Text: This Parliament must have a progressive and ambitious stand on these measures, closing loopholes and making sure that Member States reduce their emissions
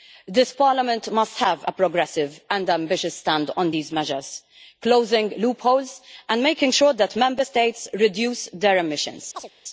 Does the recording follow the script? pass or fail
pass